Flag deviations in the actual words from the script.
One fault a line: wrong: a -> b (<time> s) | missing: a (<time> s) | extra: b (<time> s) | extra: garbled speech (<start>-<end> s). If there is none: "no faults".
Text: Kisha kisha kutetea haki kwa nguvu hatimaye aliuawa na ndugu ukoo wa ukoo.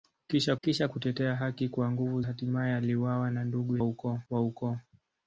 no faults